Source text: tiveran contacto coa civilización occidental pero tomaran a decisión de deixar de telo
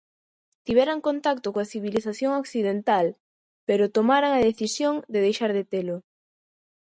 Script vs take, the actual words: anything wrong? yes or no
no